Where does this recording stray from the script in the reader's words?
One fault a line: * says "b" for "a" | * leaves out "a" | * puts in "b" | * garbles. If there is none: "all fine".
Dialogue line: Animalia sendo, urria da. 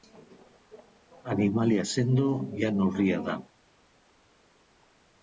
* puts in "jan"